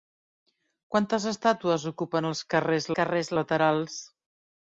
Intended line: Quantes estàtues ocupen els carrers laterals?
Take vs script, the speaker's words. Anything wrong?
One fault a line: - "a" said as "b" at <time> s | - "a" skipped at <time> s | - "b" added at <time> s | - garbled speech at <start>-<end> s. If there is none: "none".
- "carrers" added at 3.0 s